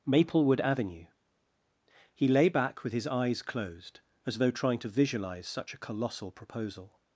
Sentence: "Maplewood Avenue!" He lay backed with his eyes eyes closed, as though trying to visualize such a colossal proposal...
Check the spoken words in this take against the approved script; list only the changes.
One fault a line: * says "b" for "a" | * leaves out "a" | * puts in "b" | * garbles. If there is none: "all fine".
* says "back" for "backed"
* leaves out "eyes"